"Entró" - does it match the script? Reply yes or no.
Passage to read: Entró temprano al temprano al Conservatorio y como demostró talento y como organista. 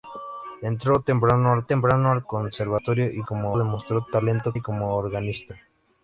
yes